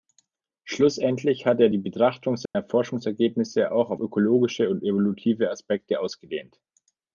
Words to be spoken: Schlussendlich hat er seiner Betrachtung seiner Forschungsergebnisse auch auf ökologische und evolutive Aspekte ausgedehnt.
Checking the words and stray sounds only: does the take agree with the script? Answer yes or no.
no